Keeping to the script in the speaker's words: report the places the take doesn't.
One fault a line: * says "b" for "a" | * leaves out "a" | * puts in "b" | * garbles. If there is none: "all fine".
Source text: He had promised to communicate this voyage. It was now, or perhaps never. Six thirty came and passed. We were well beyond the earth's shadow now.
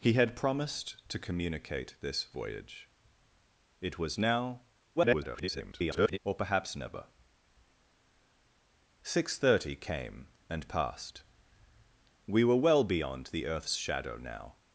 * garbles